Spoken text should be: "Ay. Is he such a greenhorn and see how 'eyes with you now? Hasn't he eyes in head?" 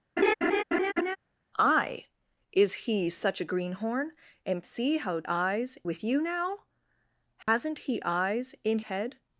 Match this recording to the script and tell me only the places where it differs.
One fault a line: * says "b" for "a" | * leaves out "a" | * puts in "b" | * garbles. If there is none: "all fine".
all fine